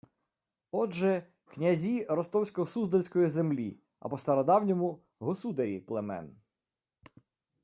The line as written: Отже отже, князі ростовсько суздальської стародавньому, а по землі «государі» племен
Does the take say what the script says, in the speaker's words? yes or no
no